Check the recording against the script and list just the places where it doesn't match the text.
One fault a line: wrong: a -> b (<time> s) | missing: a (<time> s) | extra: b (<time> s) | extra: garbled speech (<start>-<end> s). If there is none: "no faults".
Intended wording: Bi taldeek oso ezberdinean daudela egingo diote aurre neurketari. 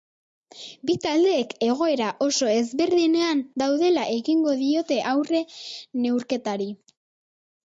extra: egoera (1.6 s)